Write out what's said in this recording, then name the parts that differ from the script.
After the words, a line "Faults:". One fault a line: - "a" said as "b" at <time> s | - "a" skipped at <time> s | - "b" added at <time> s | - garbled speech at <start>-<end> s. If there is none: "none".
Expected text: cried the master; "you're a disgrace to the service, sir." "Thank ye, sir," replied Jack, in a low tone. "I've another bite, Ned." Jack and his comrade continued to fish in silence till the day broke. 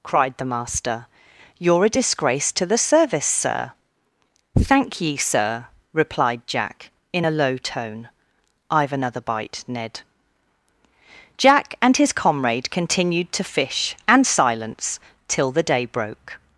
cried the master; "you're a disgrace to the service, sir." "Thank ye, sir," replied Jack, in a low tone. "I've another bite, Ned." Jack and his comrade continued to fish and silence till the day broke.
Faults:
- "in" said as "and" at 14.1 s